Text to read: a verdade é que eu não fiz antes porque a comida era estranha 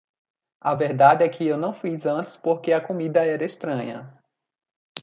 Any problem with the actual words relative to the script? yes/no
no